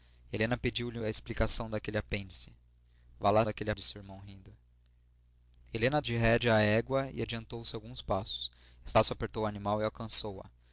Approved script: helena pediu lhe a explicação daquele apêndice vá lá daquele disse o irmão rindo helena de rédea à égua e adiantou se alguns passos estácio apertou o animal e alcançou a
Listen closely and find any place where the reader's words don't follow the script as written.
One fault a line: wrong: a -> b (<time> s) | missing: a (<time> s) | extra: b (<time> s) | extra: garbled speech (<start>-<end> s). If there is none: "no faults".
no faults